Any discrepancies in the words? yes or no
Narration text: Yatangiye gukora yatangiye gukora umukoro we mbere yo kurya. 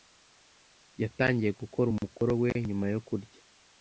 yes